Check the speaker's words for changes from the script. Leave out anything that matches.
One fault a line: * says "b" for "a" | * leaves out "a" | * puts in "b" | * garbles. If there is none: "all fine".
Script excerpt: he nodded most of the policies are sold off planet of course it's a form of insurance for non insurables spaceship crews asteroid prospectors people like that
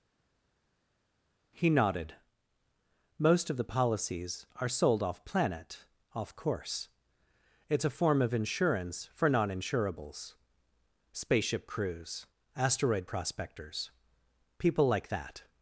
* says "off" for "of"